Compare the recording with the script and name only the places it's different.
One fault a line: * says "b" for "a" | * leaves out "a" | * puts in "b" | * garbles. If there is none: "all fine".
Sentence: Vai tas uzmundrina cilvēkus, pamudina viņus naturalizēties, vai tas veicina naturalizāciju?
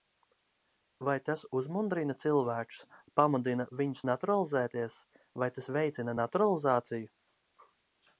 all fine